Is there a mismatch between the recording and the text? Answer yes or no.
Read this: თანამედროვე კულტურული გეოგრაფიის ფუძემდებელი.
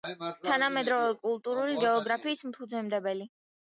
no